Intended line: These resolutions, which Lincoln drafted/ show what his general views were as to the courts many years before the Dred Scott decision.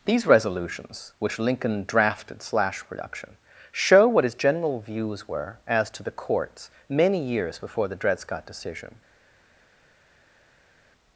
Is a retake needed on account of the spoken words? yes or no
yes